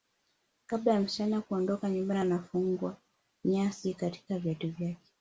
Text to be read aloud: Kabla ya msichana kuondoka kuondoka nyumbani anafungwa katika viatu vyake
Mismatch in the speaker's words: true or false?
true